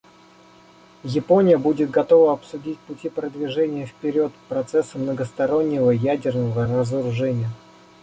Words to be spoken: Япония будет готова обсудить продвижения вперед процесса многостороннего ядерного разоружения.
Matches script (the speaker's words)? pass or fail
fail